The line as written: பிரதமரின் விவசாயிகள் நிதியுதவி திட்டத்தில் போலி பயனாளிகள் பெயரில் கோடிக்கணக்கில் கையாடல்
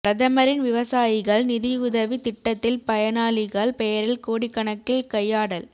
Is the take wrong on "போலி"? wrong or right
wrong